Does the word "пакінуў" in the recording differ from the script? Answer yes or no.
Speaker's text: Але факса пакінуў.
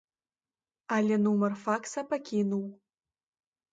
no